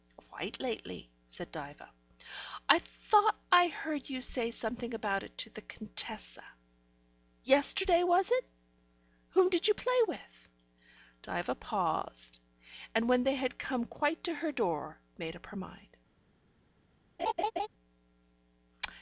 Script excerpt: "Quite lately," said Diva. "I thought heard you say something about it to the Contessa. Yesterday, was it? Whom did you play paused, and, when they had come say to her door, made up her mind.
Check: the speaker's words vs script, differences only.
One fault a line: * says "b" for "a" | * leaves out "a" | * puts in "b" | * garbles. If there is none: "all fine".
* puts in "I"
* puts in "with Diva"
* says "quite" for "say"